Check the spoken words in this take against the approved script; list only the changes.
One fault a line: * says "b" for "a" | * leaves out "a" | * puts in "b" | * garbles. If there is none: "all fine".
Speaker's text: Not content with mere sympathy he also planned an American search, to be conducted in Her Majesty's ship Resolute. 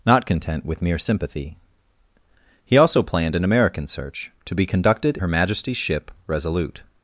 * leaves out "in"